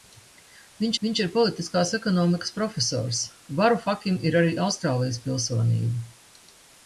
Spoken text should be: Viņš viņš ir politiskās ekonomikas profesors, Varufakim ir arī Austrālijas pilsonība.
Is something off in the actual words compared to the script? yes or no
no